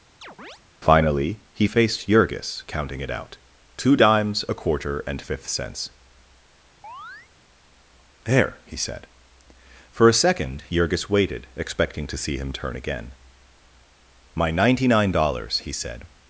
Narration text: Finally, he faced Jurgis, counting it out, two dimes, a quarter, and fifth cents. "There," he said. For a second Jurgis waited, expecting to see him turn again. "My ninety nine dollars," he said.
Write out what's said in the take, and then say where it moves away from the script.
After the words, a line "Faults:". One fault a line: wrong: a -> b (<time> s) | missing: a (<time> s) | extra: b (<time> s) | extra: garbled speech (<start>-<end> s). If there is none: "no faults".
Finally, he faced Jurgis, counting it out, two dimes, a quarter, and fifth cents. "There," he said. For a second Jurgis waited, expecting to see him turn again. "My ninety nine dollars," he said.
Faults:
no faults